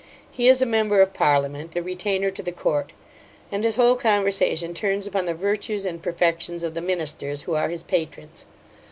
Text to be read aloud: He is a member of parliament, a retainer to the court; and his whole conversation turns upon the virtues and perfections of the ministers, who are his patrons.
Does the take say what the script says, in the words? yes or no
yes